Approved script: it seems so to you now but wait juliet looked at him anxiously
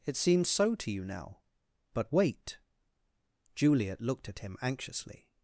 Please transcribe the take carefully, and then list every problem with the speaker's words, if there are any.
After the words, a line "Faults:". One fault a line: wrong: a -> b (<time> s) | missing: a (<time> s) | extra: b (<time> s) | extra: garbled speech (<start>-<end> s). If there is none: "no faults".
it seems so to you now but wait juliet looked at him anxiously
Faults:
no faults